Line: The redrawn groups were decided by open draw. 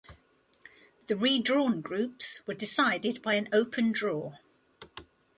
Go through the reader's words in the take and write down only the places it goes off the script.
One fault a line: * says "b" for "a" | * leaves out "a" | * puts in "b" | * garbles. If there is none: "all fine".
* puts in "an"